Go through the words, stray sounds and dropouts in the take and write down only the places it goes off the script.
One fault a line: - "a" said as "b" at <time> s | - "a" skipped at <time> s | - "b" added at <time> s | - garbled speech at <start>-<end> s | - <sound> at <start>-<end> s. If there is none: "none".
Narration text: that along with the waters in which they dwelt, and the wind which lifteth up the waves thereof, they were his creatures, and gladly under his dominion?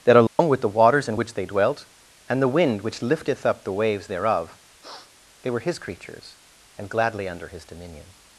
- dropout at 0.3-0.4 s
- sniff at 4.8-5.1 s